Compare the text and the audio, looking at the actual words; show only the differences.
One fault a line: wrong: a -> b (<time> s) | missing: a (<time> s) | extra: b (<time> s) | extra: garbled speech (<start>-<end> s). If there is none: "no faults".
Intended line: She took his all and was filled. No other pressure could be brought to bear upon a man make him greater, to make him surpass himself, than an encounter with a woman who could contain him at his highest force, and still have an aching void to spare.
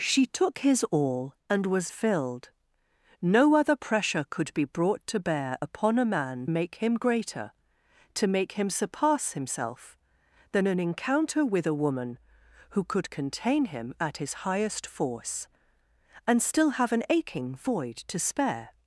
no faults